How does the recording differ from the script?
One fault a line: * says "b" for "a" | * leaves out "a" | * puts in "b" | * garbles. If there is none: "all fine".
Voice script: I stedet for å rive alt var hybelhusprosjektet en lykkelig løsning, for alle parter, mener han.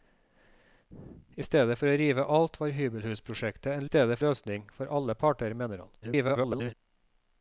* says "stedet" for "lykkelig"
* garbles